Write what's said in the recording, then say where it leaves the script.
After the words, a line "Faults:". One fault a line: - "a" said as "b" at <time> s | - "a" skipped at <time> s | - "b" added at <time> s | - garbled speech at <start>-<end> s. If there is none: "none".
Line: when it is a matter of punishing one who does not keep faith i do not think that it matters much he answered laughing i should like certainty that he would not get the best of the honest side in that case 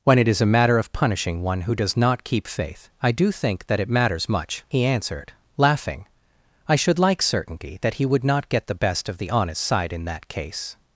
when it is a matter of punishing one who does not keep faith i do think that it matters much he answered laughing i should like certainty that he would not get the best of the honest side in that case
Faults:
- "not" skipped at 3.3 s